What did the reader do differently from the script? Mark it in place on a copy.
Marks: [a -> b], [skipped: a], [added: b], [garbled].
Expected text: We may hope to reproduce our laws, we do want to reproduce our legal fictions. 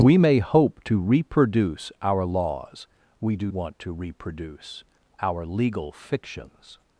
We may hope to reproduce our laws, we do want to reproduce our legal fictions.